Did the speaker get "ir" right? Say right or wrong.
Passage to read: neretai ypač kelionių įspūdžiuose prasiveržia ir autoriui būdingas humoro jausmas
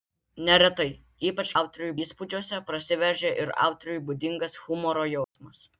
right